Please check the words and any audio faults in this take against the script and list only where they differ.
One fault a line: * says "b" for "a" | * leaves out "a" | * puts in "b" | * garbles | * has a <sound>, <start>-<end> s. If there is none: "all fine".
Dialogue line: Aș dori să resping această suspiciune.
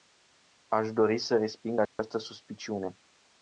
* has a dropout, 1.9-2.0 s